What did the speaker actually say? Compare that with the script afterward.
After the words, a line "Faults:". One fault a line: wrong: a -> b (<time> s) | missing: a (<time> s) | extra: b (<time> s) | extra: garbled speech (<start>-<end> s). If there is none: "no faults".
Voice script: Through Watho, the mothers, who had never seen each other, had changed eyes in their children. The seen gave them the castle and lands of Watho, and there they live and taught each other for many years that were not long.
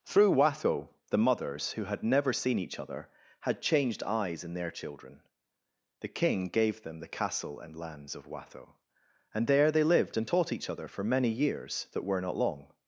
Through Watho, the mothers, who had never seen each other, had changed eyes in their children. The king gave them the castle and lands of Watho, and there they lived and taught each other for many years that were not long.
Faults:
wrong: seen -> king (6.1 s)
wrong: live -> lived (9.8 s)